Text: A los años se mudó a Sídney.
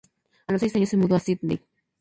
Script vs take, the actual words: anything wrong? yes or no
yes